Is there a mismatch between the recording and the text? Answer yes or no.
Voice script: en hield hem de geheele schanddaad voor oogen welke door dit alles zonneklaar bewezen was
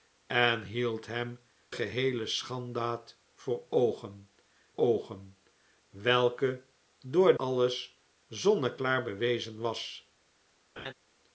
yes